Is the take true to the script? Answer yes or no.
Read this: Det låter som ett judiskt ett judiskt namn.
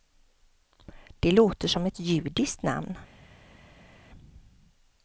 no